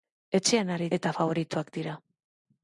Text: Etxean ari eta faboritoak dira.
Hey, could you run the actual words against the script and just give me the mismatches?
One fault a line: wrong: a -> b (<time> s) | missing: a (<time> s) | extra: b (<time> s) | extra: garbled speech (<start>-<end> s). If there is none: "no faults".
no faults